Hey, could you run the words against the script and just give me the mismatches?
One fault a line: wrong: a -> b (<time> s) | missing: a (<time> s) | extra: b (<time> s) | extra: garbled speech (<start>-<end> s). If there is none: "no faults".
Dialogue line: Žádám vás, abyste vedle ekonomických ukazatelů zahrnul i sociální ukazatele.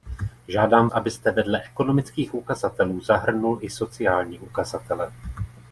missing: vás (0.9 s)